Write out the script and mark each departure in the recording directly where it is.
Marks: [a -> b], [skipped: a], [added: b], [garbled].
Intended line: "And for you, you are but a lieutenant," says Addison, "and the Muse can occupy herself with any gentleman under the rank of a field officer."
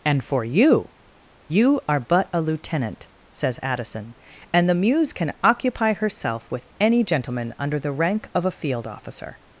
"And for you, you are but a lieutenant," says Addison, "and the Muse can occupy herself with any gentleman under the rank of a field officer."